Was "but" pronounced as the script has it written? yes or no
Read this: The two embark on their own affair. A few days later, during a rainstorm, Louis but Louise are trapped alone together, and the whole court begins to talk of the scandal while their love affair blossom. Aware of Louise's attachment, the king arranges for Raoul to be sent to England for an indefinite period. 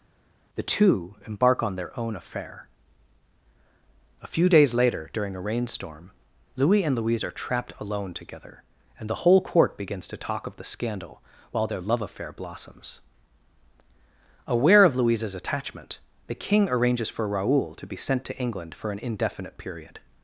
no